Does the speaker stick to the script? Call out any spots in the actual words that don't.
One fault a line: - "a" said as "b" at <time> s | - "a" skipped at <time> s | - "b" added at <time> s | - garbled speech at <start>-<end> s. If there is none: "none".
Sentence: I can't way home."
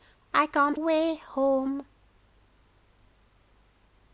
none